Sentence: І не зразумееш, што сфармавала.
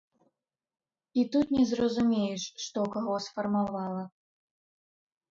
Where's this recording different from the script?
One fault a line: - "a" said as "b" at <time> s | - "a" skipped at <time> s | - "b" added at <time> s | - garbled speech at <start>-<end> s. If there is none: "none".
- "тут" added at 1.4 s
- "каго" added at 3.0 s